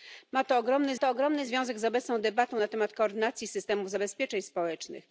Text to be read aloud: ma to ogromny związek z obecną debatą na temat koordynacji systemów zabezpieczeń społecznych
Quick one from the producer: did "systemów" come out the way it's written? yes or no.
yes